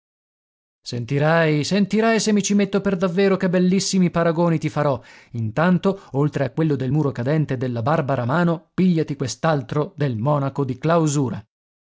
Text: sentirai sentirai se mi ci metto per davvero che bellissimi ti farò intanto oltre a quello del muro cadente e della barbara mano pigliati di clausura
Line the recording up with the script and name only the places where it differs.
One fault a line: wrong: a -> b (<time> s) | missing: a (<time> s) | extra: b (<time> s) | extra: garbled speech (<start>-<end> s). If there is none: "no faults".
extra: paragoni (4.1 s)
extra: quest'altro del monaco (9.2 s)